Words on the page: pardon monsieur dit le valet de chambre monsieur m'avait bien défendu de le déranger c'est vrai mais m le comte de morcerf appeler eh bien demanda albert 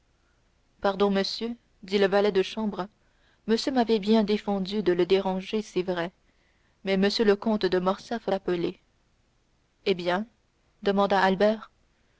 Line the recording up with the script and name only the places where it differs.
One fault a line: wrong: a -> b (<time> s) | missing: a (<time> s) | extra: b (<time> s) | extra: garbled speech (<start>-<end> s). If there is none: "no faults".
no faults